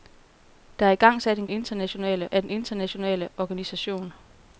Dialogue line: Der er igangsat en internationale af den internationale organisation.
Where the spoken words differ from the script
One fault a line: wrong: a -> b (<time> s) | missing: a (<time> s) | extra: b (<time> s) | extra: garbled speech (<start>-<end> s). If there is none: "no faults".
no faults